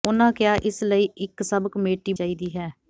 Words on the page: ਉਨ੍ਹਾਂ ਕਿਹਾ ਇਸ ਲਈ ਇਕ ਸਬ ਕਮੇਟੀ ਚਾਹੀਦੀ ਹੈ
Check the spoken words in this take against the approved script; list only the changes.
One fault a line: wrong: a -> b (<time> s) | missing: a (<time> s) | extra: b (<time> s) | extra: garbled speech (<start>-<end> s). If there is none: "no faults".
no faults